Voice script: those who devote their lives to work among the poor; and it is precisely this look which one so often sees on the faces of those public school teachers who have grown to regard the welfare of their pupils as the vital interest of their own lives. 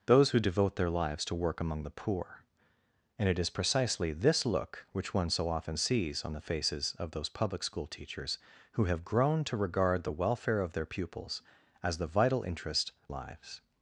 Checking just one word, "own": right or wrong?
wrong